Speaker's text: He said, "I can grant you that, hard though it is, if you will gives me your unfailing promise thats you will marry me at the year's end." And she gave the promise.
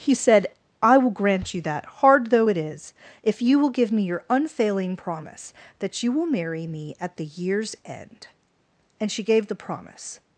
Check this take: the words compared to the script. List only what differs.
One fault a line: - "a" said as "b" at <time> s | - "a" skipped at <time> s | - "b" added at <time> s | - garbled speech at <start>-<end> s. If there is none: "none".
- "can" said as "will" at 1.0 s
- "gives" said as "give" at 3.7 s
- "thats" said as "that" at 5.8 s